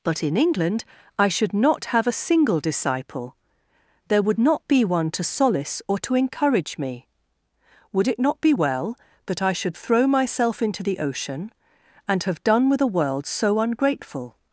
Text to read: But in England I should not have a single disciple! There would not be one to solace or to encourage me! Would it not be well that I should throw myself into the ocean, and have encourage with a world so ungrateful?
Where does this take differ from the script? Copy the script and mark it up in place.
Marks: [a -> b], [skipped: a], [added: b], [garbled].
But in England I should not have a single disciple! There would not be one to solace or to encourage me! Would it not be well that I should throw myself into the ocean, and have [encourage -> done] with a world so ungrateful?